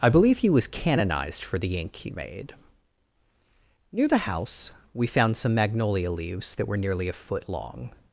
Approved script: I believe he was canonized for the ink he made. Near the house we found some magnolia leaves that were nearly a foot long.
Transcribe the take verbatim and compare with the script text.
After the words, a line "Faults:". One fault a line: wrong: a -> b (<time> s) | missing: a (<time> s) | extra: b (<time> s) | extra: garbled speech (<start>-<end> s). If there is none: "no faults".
I believe he was canonized for the ink he made. Near the house we found some magnolia leaves that were nearly a foot long.
Faults:
no faults